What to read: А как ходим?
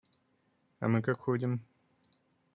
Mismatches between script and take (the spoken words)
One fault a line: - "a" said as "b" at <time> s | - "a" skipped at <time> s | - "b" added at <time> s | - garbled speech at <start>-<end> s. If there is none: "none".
- "мы" added at 0.9 s